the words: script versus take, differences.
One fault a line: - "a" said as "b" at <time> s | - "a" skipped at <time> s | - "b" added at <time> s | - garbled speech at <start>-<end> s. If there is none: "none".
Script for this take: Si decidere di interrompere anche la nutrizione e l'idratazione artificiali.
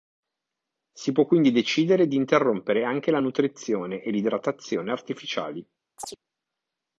- "può quindi" added at 1.1 s